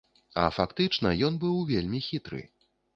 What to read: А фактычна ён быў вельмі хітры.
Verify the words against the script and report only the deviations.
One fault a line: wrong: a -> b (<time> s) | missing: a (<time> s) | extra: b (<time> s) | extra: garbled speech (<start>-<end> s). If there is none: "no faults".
no faults